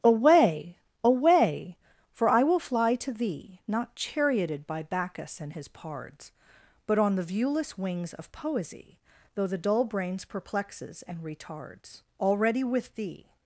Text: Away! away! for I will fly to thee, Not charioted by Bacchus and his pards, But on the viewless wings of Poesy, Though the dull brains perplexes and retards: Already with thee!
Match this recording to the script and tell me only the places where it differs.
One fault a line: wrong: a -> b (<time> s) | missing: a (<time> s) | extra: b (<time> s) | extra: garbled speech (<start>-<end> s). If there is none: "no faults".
no faults